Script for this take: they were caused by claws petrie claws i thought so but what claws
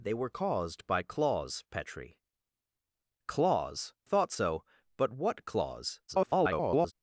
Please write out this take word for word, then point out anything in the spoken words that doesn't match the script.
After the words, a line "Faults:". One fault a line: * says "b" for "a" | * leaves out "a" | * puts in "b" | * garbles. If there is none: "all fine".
they were caused by claws petrie claws thought so but what claws [garbled]
Faults:
* leaves out "i"
* garbles